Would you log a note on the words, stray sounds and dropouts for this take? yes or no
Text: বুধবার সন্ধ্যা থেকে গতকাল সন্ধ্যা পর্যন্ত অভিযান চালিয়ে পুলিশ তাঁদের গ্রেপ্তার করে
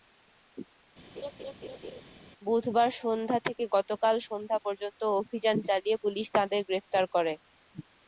yes